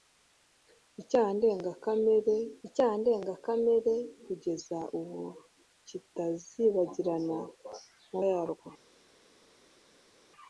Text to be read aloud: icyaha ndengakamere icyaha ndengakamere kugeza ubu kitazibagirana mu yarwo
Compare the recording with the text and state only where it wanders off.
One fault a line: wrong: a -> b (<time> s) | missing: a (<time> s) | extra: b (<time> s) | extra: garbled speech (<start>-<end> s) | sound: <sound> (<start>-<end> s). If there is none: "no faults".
no faults